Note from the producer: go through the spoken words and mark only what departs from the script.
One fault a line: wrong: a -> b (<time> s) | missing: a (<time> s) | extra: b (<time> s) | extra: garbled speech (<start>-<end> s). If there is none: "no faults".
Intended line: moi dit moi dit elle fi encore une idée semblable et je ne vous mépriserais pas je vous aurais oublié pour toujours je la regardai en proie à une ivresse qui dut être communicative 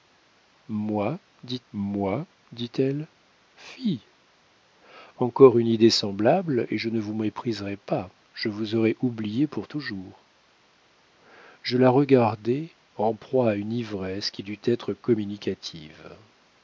no faults